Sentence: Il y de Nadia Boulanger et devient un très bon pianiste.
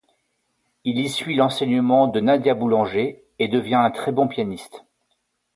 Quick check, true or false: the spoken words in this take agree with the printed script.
false